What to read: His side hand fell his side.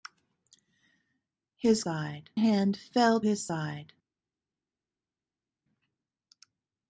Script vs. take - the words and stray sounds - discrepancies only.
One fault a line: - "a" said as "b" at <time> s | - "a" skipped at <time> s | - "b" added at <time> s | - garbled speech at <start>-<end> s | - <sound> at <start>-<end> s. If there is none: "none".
none